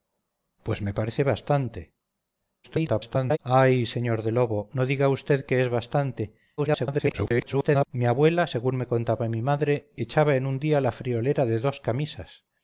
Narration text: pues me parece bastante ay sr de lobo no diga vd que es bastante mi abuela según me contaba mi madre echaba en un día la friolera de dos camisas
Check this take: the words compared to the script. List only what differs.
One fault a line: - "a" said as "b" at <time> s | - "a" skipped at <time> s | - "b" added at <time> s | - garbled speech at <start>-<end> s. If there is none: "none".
- garbled speech at 2.6-3.4 s
- garbled speech at 6.6-7.9 s